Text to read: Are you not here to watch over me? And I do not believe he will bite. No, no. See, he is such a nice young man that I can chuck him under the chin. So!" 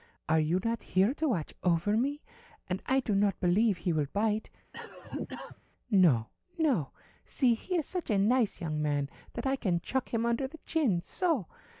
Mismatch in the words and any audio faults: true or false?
true